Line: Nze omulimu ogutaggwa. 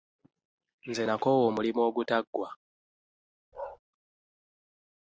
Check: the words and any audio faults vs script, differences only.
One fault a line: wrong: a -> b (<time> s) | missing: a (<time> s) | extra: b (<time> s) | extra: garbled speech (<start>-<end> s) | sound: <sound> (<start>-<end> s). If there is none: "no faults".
extra: nakoowa (1.1 s)
sound: bark (3.5-3.8 s)